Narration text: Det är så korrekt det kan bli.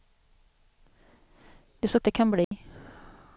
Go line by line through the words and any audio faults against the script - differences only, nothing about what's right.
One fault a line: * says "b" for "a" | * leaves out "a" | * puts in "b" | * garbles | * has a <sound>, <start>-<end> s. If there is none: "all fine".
* leaves out "korrekt"
* has a dropout, 2.4-2.5 s